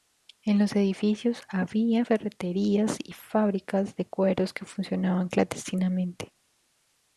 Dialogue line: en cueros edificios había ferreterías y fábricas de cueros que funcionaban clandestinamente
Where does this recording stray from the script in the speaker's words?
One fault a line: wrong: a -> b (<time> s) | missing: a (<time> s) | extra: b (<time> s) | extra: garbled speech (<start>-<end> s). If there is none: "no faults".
wrong: cueros -> los (0.6 s)